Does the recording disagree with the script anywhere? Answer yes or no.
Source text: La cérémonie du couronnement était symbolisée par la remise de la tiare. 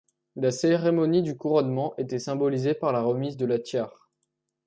no